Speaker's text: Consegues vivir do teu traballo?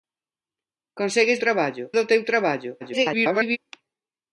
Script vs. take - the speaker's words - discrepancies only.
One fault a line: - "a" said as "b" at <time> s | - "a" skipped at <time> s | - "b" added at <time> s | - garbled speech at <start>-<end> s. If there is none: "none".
- "vivir" said as "traballo" at 1.4 s
- garbled speech at 2.8-3.6 s